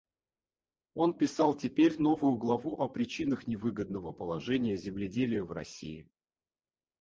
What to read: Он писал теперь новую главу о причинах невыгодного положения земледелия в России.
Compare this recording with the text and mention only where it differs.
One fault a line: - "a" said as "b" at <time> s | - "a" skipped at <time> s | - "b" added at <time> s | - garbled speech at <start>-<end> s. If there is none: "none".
none